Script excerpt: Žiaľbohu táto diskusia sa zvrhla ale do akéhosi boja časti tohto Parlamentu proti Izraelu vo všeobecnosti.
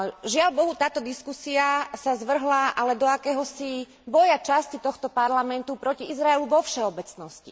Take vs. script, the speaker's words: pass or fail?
pass